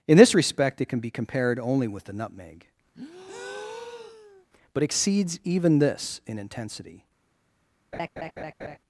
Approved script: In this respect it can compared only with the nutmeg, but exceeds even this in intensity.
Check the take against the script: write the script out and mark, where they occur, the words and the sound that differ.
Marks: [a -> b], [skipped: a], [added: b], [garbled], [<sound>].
In this respect it can [added: be] compared only with the nutmeg, [breath] but exceeds even this in intensity. [laugh]